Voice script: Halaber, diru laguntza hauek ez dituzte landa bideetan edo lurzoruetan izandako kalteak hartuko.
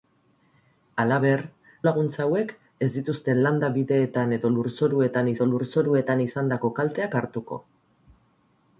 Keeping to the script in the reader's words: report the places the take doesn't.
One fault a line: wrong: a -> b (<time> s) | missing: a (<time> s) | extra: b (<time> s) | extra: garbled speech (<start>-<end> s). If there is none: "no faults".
missing: diru (1.4 s)
extra: edo lurzoruetan (5.4 s)